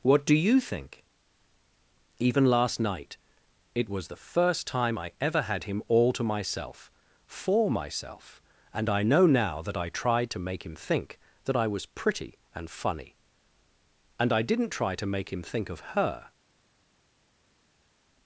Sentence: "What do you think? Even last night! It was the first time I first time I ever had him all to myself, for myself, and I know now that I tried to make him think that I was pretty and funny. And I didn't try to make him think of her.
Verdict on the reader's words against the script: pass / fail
fail